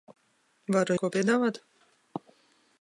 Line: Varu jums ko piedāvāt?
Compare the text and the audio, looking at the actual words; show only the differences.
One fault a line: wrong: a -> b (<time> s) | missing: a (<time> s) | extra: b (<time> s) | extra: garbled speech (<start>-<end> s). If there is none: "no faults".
missing: jums (1.0 s)